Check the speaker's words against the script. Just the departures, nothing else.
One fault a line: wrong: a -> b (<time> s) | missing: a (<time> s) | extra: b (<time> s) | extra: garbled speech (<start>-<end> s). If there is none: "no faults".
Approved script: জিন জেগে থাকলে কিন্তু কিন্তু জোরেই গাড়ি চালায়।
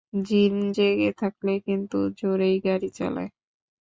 missing: কিন্তু (2.0 s)